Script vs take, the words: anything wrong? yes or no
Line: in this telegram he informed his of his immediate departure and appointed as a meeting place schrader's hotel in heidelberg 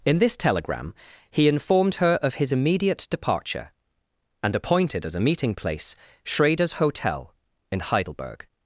yes